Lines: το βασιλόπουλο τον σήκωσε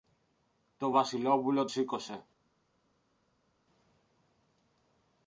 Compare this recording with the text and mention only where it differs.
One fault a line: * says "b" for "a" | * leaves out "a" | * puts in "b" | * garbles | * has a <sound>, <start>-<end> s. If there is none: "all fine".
* leaves out "τον"